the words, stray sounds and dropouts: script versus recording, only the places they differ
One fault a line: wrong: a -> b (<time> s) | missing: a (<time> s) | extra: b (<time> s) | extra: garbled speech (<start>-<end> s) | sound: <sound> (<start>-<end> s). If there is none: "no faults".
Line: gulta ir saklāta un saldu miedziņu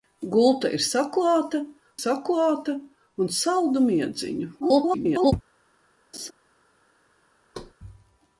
extra: saklāta (2.0 s)
extra: garbled speech (4.6-5.3 s)
sound: laugh (6.1-6.3 s)
sound: thud (7.5-7.7 s)